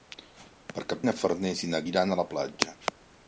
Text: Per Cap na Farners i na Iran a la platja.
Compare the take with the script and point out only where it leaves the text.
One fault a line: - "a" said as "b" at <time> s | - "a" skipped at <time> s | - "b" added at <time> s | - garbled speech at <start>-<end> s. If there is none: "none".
none